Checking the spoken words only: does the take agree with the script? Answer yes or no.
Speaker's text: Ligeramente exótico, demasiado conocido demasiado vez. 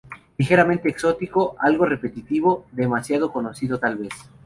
no